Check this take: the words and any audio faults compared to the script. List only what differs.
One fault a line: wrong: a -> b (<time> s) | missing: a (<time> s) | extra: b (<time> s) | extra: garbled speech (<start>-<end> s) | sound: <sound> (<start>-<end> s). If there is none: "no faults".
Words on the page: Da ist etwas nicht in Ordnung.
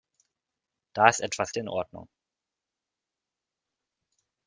missing: nicht (1.5 s)